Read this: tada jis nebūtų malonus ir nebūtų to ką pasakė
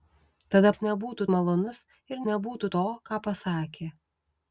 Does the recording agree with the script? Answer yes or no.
yes